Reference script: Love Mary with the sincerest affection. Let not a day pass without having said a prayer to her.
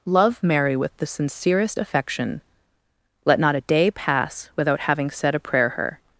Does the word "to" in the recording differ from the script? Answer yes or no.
yes